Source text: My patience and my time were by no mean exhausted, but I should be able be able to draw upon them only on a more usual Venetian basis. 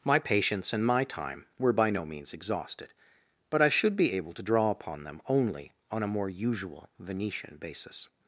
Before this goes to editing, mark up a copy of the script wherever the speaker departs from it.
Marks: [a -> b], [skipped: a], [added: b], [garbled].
My patience and my time were by no [mean -> means] exhausted, but I should be able [skipped: be able] to draw upon them only on a more usual Venetian basis.